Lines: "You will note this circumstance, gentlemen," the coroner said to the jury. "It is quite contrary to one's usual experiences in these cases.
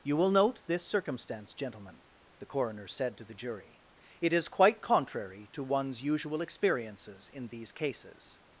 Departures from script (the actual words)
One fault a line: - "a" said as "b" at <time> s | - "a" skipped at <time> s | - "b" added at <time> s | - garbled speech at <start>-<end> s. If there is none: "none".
none